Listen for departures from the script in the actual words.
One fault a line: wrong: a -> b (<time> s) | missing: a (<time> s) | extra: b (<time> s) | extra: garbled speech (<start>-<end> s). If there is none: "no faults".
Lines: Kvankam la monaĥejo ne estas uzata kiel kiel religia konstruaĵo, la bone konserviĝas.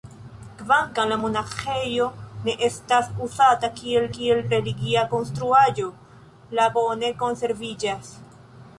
no faults